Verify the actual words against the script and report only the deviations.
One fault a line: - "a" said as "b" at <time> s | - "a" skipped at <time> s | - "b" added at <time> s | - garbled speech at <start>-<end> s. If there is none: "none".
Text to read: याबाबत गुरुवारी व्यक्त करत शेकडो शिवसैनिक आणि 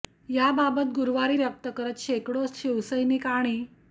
none